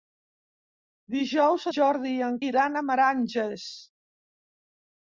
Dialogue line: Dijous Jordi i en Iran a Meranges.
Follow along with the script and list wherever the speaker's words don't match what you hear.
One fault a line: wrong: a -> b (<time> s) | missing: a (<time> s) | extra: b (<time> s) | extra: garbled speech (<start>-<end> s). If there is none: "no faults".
no faults